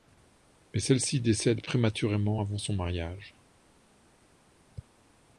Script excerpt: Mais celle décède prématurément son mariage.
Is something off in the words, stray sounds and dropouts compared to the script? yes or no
yes